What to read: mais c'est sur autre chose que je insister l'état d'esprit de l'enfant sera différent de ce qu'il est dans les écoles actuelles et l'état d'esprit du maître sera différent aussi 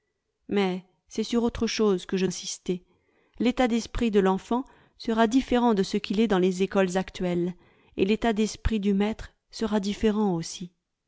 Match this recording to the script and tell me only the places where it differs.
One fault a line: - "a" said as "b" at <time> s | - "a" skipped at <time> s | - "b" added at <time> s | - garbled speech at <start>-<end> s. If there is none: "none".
none